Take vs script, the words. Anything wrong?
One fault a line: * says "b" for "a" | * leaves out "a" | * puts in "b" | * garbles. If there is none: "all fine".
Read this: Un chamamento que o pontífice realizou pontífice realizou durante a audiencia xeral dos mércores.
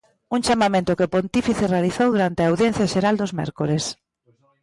* leaves out "pontífice realizou"